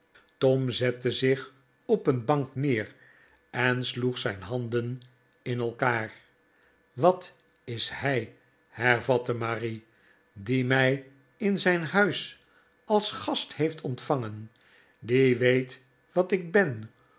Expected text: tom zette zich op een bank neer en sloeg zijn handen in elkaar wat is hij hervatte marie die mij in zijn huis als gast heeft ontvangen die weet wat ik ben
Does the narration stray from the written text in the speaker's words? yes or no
no